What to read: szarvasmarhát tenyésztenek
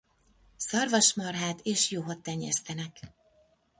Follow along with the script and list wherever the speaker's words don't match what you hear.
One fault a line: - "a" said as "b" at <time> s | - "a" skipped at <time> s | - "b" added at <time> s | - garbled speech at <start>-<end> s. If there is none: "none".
- "és juhot" added at 1.6 s